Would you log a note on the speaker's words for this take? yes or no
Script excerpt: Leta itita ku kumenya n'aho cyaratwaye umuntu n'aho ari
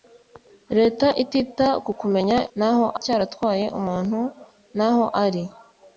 no